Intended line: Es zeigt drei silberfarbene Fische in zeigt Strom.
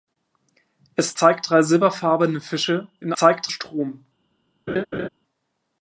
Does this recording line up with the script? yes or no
yes